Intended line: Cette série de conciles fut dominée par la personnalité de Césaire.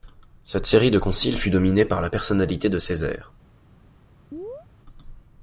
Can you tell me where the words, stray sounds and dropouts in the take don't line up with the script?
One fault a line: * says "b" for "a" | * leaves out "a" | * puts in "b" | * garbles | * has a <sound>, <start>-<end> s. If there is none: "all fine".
* has a chirp, 4.3-4.7 s